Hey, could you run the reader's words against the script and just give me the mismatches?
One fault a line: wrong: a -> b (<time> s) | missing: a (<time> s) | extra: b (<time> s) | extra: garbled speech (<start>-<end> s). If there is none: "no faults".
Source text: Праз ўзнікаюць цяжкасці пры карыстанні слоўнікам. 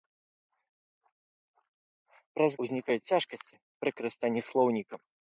no faults